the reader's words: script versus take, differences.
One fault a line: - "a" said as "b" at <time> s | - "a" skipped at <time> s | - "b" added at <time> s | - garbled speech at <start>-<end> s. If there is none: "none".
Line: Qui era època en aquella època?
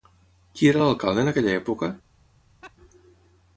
- "època" said as "l'alcalde" at 0.8 s